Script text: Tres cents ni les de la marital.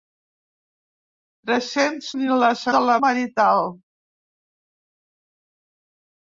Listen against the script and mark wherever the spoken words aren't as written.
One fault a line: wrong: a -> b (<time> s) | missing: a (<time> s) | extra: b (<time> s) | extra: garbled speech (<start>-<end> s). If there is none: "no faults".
no faults